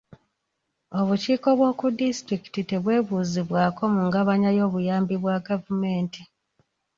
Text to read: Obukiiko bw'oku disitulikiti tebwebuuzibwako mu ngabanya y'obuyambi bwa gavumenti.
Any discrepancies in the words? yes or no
no